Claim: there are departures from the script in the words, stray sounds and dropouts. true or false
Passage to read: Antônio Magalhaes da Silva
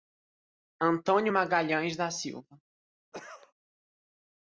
true